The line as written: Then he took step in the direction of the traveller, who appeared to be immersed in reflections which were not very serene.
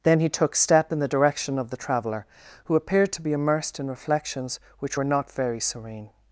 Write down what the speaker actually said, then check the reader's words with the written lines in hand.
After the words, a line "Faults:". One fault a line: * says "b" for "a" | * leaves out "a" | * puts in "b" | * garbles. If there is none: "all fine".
Then he took step in the direction of the traveller, who appeared to be immersed in reflections which were not very serene.
Faults:
all fine